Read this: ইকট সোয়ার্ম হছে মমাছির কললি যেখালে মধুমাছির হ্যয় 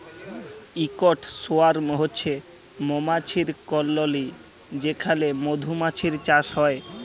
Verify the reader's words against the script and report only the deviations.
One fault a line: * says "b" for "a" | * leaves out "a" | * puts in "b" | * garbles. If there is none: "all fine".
* puts in "চাষ"